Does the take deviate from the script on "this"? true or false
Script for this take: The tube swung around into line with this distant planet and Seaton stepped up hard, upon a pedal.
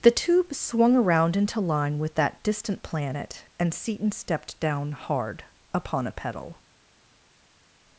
true